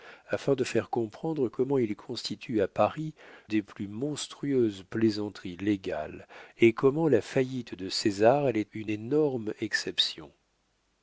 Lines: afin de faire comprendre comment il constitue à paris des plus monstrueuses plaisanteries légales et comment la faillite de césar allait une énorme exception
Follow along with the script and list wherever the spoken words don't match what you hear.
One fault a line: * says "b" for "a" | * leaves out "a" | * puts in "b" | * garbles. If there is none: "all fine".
all fine